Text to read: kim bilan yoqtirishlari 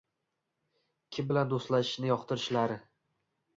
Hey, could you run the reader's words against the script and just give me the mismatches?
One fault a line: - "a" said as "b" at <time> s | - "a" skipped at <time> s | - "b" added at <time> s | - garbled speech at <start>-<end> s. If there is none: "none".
- "do‘stlashishni" added at 1.5 s